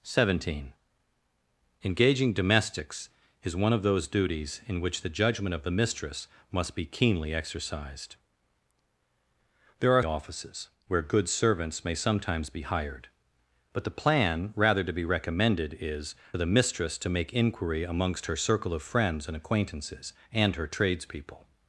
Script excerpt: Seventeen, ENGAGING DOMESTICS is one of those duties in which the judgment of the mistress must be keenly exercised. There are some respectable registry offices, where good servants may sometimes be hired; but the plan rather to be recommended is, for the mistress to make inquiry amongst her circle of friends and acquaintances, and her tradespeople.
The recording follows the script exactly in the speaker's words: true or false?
false